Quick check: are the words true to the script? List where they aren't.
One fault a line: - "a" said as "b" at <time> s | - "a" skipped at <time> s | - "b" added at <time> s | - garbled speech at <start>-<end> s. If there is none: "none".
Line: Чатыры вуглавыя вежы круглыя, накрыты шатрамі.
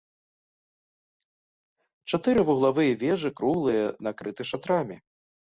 none